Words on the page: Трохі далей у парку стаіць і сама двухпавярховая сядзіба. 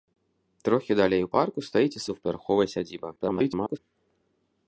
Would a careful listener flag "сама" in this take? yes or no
yes